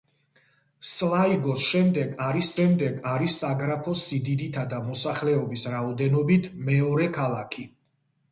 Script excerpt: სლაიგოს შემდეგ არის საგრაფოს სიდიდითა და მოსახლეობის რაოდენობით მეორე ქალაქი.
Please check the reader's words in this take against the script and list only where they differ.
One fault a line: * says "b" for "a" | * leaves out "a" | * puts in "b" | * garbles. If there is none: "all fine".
* puts in "შემდეგ არის"